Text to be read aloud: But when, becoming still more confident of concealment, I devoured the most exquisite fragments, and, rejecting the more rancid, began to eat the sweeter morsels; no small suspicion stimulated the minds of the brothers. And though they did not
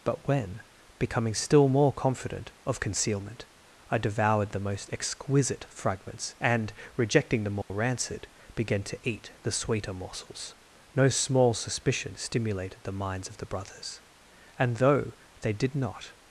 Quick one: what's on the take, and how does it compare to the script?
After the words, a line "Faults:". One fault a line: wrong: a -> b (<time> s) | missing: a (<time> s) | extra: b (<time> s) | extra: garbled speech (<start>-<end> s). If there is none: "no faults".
But when, becoming still more confident of concealment, I devoured the most exquisite fragments, and, rejecting the more rancid, began to eat the sweeter morsels; no small suspicion stimulated the minds of the brothers. And though they did not
Faults:
no faults